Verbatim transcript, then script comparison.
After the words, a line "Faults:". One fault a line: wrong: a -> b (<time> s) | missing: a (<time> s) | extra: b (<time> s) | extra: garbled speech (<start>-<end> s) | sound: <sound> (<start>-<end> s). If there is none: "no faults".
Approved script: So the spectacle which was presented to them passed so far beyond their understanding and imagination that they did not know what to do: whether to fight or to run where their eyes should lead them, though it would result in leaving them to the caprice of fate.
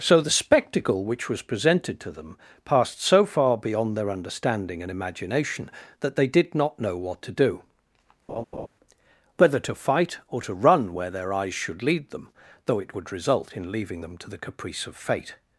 So the spectacle which was presented to them passed so far beyond their understanding and imagination that they did not know what to do: whether to fight or to run where their eyes should lead them, though it would result in leaving them to the caprice of fate.
Faults:
sound: laugh (8.3-8.7 s)